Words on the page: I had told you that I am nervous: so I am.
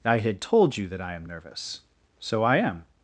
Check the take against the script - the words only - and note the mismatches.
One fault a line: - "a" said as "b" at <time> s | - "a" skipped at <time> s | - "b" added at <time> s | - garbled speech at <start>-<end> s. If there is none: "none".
none